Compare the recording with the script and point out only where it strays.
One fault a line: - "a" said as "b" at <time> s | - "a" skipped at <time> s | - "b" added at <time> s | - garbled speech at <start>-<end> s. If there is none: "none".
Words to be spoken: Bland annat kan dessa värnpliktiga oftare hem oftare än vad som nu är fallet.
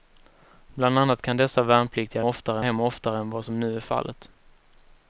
none